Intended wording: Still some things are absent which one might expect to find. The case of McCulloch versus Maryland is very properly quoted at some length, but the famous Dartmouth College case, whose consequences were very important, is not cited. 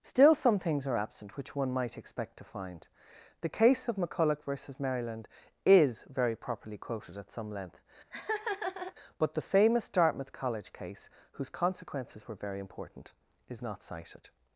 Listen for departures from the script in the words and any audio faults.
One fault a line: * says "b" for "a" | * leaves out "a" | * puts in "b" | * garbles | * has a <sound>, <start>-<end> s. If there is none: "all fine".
* has a laugh, 8.1-8.9 s